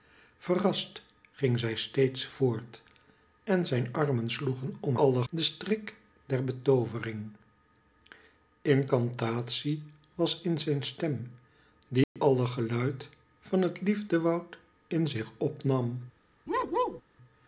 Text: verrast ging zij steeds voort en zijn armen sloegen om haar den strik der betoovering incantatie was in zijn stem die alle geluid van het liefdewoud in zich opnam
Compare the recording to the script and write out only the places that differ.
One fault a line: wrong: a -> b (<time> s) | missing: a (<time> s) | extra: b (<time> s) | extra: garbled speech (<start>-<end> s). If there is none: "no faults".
wrong: haar -> alle (5.0 s)